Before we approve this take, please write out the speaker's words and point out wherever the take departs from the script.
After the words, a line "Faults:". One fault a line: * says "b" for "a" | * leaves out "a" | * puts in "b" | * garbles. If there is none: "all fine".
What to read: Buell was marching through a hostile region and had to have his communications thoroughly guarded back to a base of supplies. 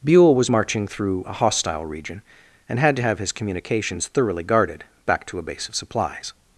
Buell was marching through a hostile region and had to have his communications thoroughly guarded back to a base of supplies.
Faults:
all fine